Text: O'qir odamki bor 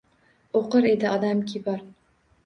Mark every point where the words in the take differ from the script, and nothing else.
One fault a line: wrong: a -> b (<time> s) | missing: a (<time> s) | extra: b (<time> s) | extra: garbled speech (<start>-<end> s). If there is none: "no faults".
extra: edi (0.9 s)